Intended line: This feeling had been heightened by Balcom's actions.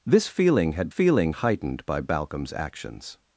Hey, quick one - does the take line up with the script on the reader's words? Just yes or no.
no